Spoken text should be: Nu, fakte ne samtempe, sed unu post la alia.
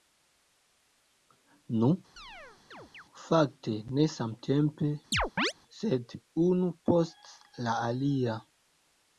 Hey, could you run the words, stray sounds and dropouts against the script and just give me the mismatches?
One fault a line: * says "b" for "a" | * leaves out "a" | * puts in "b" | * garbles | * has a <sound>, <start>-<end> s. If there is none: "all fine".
* has a chirp, 2.2-3.0 s
* has a chirp, 5.1-5.5 s